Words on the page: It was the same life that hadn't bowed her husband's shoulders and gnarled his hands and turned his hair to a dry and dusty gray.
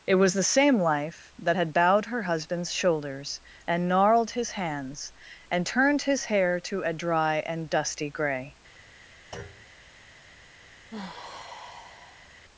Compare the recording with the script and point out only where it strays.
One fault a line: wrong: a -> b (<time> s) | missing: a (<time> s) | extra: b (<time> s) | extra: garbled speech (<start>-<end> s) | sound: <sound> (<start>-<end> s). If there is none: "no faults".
wrong: hadn't -> had (1.6 s)
sound: thud (9.3-9.8 s)
sound: sigh (10.9-12.4 s)